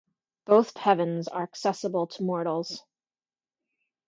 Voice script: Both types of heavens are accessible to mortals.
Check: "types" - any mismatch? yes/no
yes